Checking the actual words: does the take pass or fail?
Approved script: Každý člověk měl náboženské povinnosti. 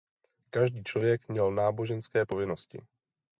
pass